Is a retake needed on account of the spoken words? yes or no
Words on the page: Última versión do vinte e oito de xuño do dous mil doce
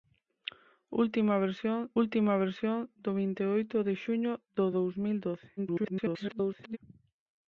yes